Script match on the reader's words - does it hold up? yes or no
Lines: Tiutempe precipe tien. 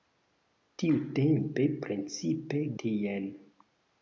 yes